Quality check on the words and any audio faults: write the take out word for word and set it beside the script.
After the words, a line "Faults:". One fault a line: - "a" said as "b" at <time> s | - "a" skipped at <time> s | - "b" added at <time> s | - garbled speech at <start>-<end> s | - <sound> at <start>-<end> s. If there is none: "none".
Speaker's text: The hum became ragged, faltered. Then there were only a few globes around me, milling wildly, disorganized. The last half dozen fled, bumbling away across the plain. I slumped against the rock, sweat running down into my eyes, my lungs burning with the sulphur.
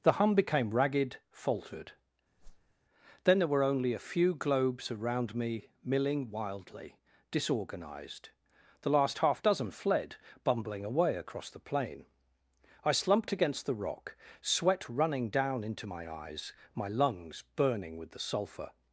The hum became ragged, faltered. Then there were only a few globes around me, milling wildly, disorganized. The last half dozen fled, bumbling away across the plain. I slumped against the rock, sweat running down into my eyes, my lungs burning with the sulphur.
Faults:
- whoosh at 2.4-2.7 s